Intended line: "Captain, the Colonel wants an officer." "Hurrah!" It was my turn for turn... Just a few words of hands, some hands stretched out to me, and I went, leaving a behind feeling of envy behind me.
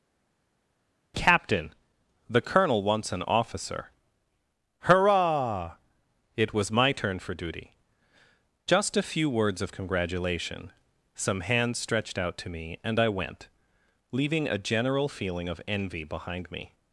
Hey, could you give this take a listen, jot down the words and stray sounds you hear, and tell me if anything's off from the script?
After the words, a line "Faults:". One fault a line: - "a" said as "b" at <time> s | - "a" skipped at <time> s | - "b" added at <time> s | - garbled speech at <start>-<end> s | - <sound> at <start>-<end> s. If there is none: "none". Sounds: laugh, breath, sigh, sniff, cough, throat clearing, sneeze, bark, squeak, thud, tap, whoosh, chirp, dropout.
"Captain, the Colonel wants an officer." "Hurrah!" It was my turn for duty... Just a few words of congratulation, some hands stretched out to me, and I went, leaving a general feeling of envy behind me.
Faults:
- "turn" said as "duty" at 7.3 s
- "hands" said as "congratulation" at 9.7 s
- "behind" said as "general" at 14.6 s